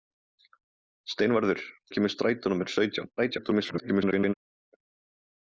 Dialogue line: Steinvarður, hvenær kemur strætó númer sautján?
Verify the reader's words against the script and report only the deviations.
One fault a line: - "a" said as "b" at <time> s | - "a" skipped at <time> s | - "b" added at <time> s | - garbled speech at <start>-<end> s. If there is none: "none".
- "hvenær" skipped at 1.6 s
- garbled speech at 3.2-4.3 s